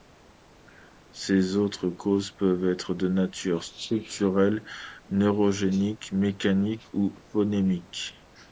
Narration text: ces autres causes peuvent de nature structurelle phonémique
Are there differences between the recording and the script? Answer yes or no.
yes